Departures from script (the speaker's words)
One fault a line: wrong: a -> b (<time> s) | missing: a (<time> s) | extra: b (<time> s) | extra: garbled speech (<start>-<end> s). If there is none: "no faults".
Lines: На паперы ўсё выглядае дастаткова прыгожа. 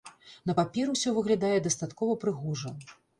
no faults